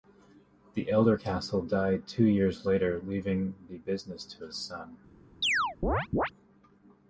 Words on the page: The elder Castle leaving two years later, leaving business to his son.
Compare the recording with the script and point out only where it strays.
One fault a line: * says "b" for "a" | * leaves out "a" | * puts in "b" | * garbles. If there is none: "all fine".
* says "died" for "leaving"
* puts in "the"